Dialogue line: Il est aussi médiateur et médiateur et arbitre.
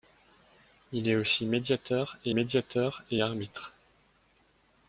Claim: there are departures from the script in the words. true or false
false